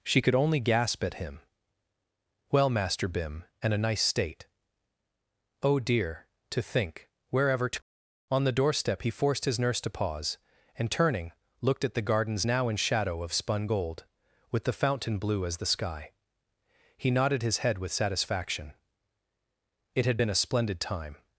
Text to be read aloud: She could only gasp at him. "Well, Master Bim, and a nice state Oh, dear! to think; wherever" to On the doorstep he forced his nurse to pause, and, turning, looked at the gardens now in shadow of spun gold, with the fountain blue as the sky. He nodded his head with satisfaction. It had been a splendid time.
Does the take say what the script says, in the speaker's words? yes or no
yes